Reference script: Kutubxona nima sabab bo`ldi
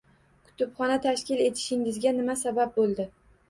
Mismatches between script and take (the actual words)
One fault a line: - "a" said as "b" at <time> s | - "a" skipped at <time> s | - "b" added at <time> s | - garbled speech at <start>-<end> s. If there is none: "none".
- "tashkil etishingizga" added at 1.0 s